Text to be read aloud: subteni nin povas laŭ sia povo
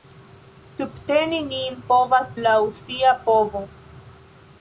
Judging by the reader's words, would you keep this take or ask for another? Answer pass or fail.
pass